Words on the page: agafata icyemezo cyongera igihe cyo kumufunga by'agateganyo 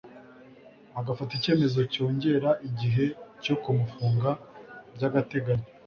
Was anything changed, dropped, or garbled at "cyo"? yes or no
no